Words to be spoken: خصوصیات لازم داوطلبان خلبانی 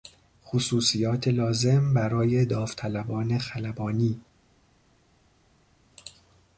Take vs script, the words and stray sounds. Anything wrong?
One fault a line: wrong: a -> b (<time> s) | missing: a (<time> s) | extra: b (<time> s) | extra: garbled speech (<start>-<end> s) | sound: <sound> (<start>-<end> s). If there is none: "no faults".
extra: برای (1.9 s)